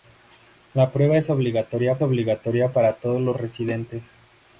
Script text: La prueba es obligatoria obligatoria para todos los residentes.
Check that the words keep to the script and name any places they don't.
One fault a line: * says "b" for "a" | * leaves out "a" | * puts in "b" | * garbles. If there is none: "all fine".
all fine